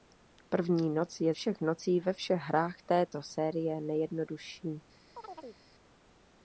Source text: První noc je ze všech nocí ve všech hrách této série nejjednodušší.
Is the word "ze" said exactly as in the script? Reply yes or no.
no